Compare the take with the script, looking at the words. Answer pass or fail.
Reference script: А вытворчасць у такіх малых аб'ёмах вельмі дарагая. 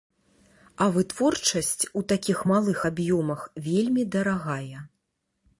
pass